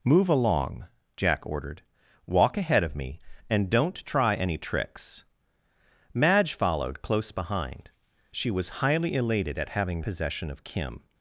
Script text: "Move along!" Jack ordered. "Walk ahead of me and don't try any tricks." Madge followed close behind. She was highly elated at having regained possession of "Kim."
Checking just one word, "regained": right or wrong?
wrong